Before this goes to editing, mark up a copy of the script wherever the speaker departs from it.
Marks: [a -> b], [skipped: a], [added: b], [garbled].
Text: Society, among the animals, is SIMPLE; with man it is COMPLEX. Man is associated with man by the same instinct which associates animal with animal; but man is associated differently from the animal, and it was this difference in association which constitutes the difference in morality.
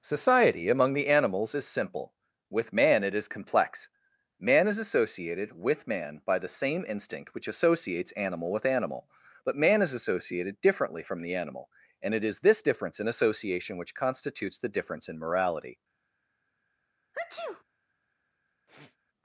Society, among the animals, is SIMPLE; with man it is COMPLEX. Man is associated with man by the same instinct which associates animal with animal; but man is associated differently from the animal, and it [was -> is] this difference in association which constitutes the difference in morality.